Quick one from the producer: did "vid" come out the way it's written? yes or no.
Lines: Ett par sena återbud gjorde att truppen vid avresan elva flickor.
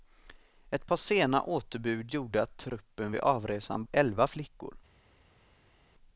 yes